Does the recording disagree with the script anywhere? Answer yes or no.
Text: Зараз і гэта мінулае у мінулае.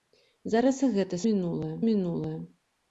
no